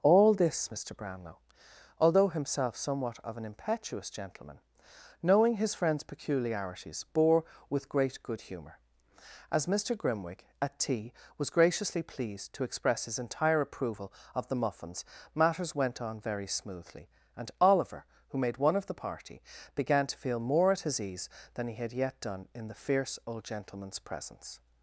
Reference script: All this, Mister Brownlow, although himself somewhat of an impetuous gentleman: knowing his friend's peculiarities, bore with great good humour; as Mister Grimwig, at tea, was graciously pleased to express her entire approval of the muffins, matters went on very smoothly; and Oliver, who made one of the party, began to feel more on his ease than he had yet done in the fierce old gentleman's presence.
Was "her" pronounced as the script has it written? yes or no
no